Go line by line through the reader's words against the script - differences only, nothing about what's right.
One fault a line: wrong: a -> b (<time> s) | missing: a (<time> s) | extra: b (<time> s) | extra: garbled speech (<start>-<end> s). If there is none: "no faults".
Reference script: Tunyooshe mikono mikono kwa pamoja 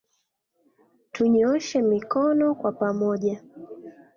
missing: mikono (2.5 s)